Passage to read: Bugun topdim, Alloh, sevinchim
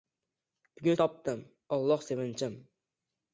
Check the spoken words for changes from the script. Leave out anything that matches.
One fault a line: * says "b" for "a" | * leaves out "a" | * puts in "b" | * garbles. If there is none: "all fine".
all fine